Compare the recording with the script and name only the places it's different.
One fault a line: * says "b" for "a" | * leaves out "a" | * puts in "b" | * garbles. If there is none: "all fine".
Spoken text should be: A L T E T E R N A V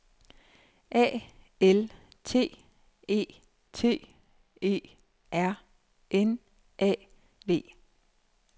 all fine